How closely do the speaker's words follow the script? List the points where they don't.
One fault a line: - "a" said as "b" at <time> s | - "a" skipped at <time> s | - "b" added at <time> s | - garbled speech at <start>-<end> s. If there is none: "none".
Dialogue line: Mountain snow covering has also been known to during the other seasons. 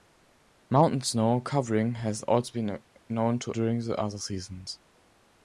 none